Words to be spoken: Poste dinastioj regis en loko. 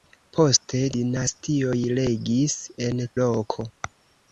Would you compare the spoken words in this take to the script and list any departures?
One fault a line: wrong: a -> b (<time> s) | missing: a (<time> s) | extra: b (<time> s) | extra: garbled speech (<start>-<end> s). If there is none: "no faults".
no faults